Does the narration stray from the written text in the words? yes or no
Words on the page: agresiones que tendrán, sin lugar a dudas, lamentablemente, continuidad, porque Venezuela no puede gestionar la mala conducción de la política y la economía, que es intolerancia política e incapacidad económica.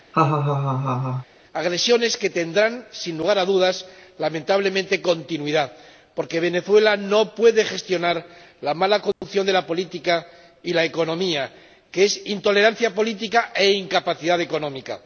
no